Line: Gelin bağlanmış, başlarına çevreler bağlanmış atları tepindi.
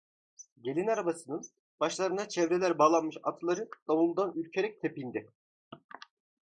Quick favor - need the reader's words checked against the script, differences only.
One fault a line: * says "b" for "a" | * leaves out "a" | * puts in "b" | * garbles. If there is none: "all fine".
* says "arabasının" for "bağlanmış"
* puts in "davuldan ürkerek"